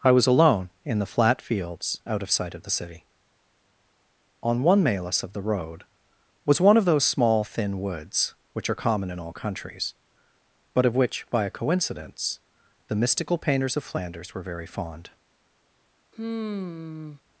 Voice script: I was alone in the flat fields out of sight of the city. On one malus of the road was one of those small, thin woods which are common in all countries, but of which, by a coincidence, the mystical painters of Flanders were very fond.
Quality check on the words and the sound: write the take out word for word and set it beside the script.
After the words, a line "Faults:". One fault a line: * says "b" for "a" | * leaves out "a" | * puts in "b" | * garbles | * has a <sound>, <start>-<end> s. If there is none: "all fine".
I was alone in the flat fields out of sight of the city. On one malus of the road was one of those small, thin woods which are common in all countries, but of which, by a coincidence, the mystical painters of Flanders were very fond.
Faults:
* has a sigh, 16.1-17.2 s